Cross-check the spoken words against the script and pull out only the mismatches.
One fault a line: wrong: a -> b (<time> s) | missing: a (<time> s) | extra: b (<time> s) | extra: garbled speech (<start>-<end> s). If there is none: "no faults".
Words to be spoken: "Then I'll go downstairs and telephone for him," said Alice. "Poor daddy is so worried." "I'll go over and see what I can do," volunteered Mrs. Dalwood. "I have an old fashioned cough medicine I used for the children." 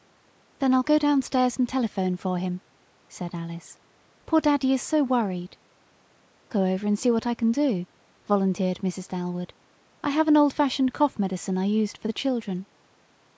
missing: I'll (5.6 s)